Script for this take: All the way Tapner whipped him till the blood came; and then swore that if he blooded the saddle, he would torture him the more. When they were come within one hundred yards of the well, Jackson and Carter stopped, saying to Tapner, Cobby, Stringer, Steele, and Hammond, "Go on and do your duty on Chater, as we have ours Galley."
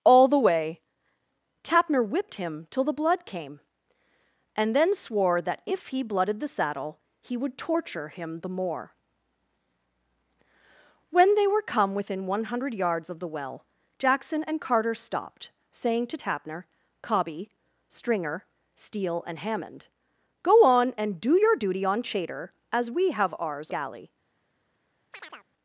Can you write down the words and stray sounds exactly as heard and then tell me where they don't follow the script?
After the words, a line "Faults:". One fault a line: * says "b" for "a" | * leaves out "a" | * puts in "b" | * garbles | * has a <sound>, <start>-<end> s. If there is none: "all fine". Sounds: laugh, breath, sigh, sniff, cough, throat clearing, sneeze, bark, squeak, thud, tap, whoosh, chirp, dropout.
All the way Tapner whipped him till the blood came; and then swore that if he blooded the saddle, he would torture him the more. When they were come within one hundred yards of the well, Jackson and Carter stopped, saying to Tapner, Cobby, Stringer, Steele, and Hammond, "Go on and do your duty on Chater, as we have ours Galley."
Faults:
* has a chirp, 25.1-25.5 s